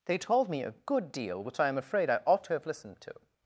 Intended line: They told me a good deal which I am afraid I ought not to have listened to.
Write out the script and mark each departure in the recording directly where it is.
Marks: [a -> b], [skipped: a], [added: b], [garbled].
They told me a good deal which I am afraid I ought [skipped: not] to have listened to.